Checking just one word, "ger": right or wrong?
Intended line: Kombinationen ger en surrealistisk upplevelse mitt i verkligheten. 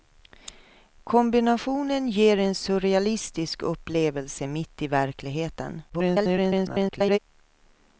right